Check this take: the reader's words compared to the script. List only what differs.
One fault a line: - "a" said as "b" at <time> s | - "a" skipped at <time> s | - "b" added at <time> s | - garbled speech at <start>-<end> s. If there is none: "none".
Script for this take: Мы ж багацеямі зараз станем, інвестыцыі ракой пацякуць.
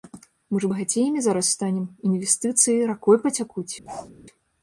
none